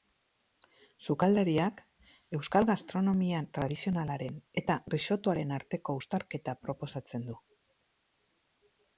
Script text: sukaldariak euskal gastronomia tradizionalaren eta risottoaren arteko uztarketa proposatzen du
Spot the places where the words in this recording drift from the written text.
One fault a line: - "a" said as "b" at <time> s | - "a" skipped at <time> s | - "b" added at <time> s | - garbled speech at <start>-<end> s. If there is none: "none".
none